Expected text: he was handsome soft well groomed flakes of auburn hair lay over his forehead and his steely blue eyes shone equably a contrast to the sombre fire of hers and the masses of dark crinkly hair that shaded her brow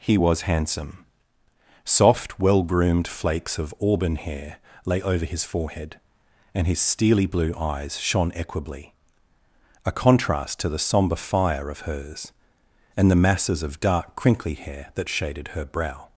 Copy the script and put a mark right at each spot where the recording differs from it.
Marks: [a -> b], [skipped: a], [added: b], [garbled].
he was handsome soft well groomed flakes of auburn hair lay over his forehead and his steely blue eyes shone equably a contrast to the sombre fire of hers and the masses of dark crinkly hair that shaded her brow